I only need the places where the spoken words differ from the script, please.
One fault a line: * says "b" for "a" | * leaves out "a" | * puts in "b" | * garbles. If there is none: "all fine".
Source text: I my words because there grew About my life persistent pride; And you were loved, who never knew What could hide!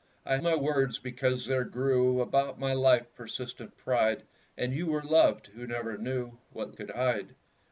all fine